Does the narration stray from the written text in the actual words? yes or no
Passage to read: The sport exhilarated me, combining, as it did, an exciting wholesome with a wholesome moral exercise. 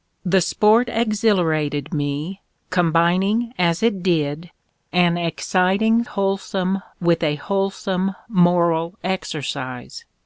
no